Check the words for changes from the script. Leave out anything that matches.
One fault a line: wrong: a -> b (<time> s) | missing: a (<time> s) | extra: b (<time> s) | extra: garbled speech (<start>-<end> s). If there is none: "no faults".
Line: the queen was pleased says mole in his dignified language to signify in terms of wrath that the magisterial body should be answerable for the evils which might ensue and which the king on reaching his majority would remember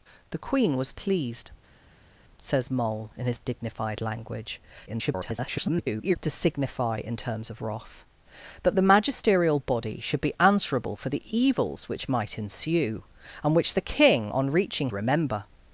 extra: garbled speech (4.9-6.2 s)
missing: his majority would (14.9 s)